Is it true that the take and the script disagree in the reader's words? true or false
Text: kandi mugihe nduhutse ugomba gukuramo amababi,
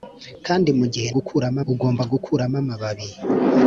true